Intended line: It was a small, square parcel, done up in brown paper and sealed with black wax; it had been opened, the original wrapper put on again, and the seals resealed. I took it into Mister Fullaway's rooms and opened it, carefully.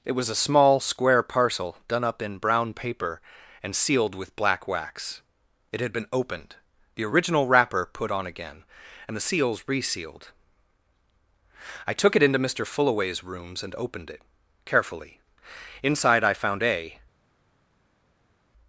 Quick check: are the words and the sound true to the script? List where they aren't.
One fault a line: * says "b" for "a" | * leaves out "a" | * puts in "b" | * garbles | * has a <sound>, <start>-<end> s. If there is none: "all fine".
* puts in "Inside I found a"